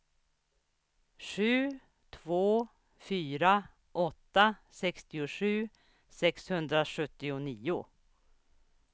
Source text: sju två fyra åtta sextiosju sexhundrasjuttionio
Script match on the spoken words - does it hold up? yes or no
yes